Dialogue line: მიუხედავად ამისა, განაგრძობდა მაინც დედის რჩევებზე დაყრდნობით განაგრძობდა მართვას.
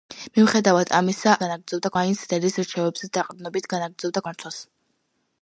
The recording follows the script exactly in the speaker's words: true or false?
true